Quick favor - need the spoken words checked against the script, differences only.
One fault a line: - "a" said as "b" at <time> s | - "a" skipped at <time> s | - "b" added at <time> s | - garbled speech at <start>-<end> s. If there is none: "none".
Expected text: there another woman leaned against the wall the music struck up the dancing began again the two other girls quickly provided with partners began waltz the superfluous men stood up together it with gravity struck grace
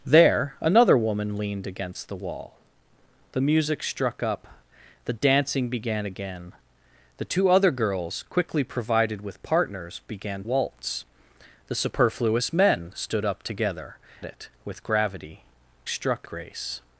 none